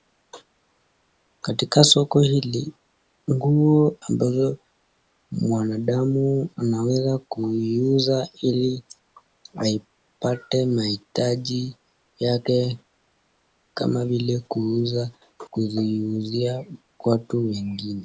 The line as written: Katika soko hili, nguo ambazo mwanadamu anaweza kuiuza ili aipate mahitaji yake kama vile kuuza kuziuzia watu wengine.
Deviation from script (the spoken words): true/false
false